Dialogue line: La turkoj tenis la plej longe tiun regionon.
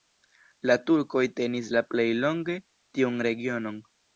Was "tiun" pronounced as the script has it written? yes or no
yes